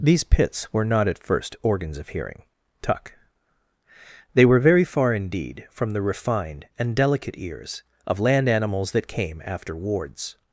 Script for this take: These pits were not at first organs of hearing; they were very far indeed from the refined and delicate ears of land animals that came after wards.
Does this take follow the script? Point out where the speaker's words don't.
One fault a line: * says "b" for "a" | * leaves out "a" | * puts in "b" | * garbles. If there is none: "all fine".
* puts in "tuck"